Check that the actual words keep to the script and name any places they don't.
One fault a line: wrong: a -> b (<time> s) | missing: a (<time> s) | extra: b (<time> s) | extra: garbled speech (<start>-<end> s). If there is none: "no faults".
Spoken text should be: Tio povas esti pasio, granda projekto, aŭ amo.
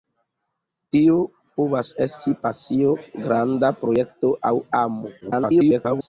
extra: garbled speech (5.2-6.1 s)